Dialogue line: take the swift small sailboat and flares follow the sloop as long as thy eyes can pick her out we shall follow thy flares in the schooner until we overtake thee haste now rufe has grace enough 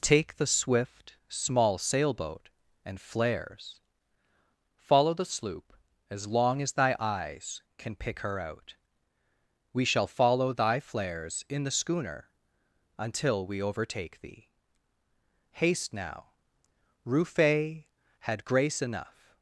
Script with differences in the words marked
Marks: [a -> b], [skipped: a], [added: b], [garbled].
take the swift small sailboat and flares follow the sloop as long as thy eyes can pick her out we shall follow thy flares in the schooner until we overtake thee haste now rufe [has -> had] grace enough